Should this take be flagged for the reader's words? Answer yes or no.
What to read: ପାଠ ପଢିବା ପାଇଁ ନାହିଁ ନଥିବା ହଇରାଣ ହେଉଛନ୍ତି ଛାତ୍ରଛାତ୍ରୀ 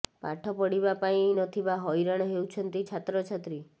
yes